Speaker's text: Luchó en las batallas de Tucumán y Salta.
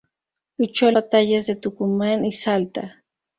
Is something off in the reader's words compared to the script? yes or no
yes